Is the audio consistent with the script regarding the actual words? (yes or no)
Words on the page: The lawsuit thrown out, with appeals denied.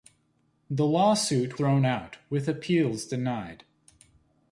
yes